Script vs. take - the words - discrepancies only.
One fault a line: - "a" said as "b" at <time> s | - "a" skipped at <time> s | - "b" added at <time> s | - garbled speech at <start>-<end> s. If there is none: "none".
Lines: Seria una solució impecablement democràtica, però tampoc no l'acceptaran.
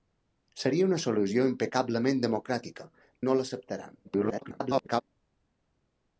- "però tampoc" skipped at 2.9 s
- garbled speech at 4.0-5.0 s